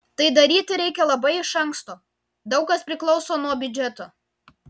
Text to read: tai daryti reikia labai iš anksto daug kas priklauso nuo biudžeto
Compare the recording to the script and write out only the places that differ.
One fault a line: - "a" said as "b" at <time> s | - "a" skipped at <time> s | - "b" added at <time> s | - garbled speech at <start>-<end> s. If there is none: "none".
none